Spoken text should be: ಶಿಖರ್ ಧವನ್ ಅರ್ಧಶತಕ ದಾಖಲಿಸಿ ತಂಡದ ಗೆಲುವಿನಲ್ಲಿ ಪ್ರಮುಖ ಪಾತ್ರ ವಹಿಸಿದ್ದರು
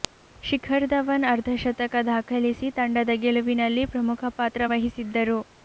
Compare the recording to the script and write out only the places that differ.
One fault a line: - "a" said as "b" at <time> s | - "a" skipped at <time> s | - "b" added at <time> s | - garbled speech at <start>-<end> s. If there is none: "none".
none